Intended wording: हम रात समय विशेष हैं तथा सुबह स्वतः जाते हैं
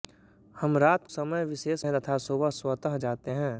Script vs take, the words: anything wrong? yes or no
no